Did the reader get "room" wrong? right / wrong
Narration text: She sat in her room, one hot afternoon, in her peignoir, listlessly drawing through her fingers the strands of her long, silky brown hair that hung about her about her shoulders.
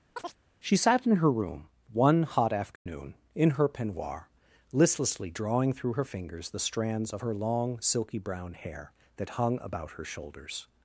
right